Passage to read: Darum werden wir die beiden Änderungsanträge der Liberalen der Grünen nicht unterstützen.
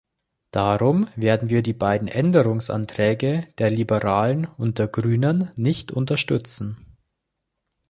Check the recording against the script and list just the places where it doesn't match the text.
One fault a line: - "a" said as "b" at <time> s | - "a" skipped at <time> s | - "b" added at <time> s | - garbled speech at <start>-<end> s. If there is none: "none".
- "und" added at 4.5 s